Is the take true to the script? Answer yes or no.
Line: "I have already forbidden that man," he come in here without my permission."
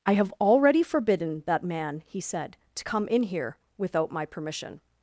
no